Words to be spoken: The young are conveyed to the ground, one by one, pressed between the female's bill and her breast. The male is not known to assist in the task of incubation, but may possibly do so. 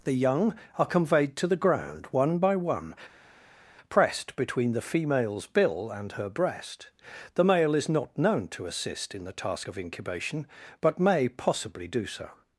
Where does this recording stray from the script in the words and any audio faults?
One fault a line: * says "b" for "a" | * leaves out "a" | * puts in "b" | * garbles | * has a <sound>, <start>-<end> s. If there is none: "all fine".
all fine